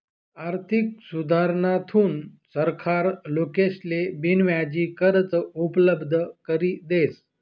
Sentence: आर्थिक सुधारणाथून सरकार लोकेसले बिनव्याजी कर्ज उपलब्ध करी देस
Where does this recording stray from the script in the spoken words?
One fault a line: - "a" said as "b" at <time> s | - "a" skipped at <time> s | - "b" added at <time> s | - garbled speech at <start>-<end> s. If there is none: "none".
none